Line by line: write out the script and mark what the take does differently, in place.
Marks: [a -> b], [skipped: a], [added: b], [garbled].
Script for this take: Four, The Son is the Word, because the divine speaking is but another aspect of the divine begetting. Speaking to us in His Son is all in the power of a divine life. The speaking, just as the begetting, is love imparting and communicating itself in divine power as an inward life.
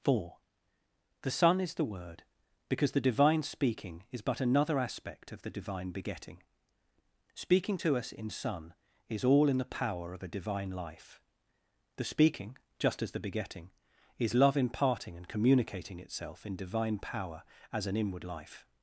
Four, The Son is the Word, because the divine speaking is but another aspect of the divine begetting. Speaking to us in [skipped: His] Son is all in the power of a divine life. The speaking, just as the begetting, is love imparting and communicating itself in divine power as an inward life.